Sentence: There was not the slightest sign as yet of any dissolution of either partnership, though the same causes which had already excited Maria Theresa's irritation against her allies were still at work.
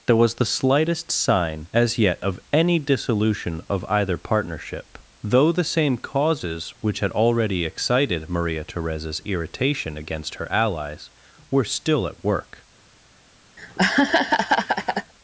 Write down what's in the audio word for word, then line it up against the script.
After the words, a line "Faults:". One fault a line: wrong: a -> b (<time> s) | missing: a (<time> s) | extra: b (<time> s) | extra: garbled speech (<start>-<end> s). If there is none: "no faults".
There was the slightest sign as yet of any dissolution of either partnership, though the same causes which had already excited Maria Theresa's irritation against her allies were still at work.
Faults:
missing: not (0.3 s)